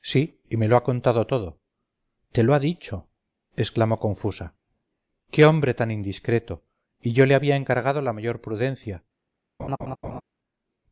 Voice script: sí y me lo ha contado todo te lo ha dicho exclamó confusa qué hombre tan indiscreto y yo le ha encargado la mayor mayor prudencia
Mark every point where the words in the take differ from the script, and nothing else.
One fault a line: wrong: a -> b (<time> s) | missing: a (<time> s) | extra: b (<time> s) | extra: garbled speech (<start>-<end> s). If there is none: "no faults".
wrong: ha -> había (7.3 s)
missing: mayor (8.4 s)